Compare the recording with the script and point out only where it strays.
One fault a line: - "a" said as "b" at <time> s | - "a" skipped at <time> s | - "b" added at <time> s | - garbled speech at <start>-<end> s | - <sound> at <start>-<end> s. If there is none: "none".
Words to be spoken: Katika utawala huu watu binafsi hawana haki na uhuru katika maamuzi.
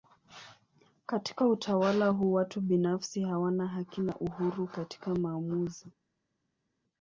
none